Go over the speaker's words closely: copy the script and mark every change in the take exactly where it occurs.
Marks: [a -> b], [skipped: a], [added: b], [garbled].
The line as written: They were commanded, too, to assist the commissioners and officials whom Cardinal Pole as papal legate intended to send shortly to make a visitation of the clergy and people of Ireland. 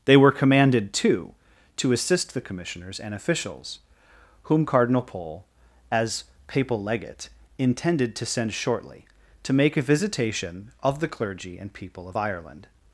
They were commanded, too, to assist the commissioners and officials whom Cardinal Pole as papal legate intended to send shortly to make a visitation of the clergy and people of Ireland.